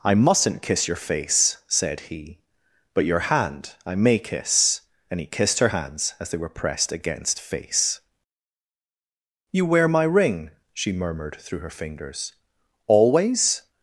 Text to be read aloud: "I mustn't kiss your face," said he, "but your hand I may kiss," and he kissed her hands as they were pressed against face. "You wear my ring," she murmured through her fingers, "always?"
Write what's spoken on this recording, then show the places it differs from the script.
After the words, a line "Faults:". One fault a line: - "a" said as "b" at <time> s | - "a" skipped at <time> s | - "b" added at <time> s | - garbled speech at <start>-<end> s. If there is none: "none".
"I mustn't kiss your face," said he, "but your hand I may kiss," and he kissed her hands as they were pressed against face. "You wear my ring," she murmured through her fingers, "always?"
Faults:
none